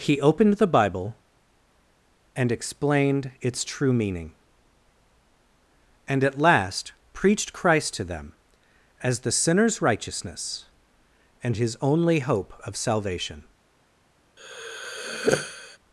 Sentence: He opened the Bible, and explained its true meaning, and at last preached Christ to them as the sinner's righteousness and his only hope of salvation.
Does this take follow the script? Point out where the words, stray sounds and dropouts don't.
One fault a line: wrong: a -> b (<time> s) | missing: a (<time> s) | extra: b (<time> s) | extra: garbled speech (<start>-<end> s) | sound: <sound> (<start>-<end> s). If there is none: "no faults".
sound: sigh (14.4-15.8 s)